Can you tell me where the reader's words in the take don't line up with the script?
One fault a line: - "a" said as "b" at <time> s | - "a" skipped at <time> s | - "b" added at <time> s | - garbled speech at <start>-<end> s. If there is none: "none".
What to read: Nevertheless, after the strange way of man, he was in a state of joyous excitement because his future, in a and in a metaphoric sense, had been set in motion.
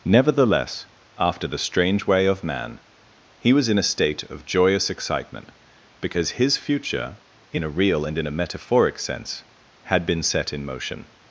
- "real" added at 7.7 s